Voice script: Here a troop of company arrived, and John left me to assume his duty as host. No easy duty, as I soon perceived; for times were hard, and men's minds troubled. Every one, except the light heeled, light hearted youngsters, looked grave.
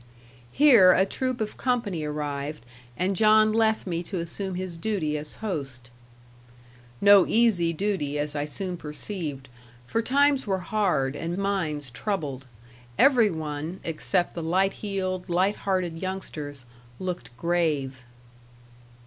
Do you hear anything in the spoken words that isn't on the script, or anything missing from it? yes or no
yes